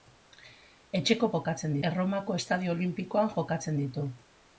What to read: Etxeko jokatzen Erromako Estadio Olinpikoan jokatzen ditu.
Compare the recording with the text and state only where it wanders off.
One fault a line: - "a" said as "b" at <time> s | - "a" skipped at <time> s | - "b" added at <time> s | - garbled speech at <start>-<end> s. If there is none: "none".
none